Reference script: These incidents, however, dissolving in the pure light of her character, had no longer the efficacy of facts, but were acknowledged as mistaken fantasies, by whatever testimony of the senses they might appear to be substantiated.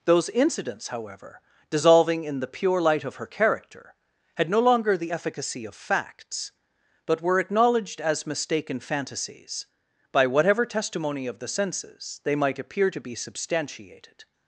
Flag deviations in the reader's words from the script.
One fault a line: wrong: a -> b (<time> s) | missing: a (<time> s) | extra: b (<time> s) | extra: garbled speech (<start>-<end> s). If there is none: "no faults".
wrong: These -> Those (0.1 s)